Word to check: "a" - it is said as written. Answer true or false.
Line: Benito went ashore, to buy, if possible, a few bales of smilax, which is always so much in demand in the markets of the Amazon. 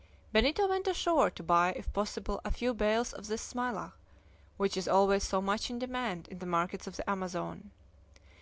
true